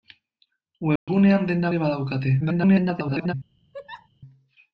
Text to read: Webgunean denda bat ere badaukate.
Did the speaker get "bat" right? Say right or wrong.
wrong